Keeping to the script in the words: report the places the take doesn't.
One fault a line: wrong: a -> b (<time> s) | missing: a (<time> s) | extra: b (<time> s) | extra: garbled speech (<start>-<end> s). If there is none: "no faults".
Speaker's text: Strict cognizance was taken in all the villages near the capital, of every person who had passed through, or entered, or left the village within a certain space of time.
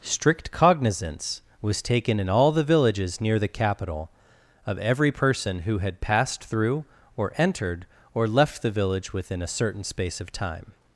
no faults